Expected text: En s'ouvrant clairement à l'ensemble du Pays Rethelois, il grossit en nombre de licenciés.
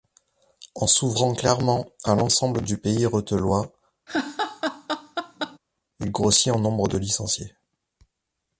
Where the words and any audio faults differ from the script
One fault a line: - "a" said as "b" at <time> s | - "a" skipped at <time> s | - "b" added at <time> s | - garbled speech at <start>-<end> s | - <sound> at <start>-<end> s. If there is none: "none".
- laugh at 4.1-5.6 s